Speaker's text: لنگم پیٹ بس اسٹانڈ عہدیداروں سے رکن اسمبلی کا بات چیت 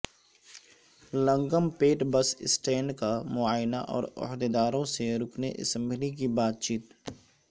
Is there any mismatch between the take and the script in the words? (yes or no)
yes